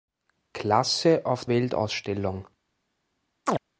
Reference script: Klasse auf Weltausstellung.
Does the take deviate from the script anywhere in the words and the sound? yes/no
yes